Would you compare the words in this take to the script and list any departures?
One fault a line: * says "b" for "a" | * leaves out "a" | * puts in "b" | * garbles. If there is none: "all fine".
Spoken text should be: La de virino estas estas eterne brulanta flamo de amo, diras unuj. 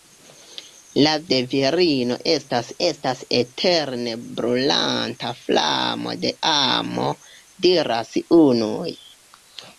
all fine